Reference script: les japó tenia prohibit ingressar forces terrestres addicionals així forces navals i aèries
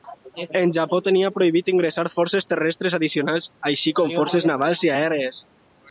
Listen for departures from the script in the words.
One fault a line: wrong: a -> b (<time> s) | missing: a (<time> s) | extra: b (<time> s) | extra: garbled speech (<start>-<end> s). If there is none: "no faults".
wrong: les -> el (0.6 s)
extra: com (4.0 s)